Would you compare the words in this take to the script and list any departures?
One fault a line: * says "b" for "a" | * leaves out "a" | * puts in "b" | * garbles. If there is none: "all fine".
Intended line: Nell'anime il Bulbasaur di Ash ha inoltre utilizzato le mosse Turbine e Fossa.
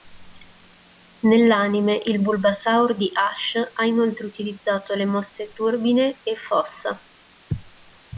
all fine